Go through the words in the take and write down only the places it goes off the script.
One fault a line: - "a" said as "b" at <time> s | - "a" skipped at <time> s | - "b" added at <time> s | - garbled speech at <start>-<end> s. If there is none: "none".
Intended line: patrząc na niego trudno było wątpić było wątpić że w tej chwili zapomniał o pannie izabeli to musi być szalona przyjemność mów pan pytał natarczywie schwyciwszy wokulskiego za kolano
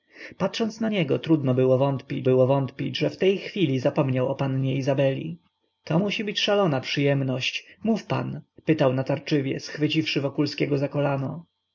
none